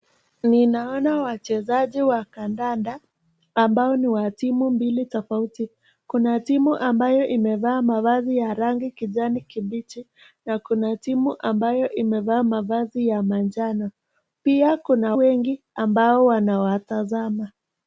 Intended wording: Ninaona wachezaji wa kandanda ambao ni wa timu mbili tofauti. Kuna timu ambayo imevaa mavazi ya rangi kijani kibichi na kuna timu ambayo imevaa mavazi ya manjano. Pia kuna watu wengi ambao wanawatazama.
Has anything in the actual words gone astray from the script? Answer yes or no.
yes